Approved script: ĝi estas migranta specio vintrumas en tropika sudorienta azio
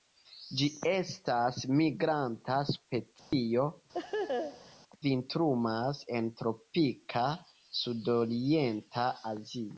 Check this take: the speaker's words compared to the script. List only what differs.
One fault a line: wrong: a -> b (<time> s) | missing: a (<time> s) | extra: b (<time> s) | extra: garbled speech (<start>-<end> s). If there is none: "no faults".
no faults